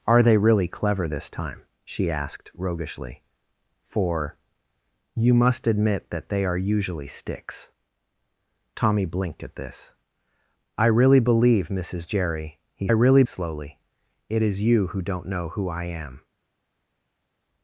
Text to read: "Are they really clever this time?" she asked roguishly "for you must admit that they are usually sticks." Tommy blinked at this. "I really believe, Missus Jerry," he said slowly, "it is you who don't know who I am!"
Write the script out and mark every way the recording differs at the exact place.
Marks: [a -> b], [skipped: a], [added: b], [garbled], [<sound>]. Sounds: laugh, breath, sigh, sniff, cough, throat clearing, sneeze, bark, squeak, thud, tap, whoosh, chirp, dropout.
"Are they really clever this time?" she asked roguishly "for you must admit that they are usually sticks." Tommy blinked at this. "I really believe, Missus Jerry," he [said -> really] slowly, "it is you who don't know who I am!"